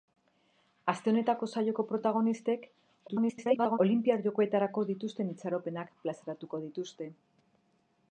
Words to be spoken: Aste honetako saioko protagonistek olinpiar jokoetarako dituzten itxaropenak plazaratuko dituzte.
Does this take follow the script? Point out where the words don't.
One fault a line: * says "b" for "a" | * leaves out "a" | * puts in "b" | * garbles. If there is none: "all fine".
* garbles